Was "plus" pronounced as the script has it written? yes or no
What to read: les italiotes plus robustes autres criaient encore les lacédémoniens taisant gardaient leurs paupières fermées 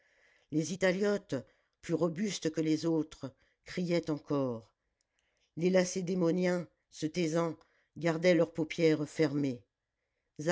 yes